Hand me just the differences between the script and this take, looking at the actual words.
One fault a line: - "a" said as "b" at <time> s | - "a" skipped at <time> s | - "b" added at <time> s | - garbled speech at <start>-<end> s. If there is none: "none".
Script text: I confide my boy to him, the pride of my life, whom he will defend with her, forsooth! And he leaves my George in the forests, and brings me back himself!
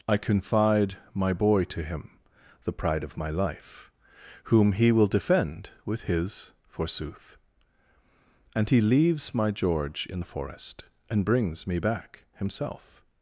- "her" said as "his" at 6.0 s
- "forests" said as "forest" at 10.2 s